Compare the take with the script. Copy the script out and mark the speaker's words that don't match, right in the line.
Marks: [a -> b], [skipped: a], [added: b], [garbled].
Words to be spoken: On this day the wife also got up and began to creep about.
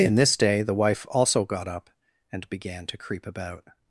[On -> In] this day the wife also got up and began to creep about.